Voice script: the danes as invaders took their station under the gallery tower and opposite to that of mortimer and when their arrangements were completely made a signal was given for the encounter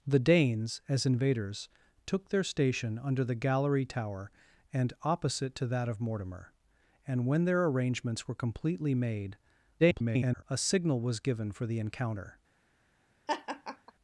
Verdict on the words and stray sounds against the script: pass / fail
fail